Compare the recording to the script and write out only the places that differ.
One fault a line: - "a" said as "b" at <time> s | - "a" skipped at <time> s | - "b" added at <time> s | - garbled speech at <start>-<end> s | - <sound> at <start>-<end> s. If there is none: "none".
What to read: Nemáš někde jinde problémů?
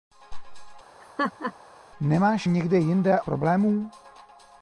- laugh at 1.0-1.5 s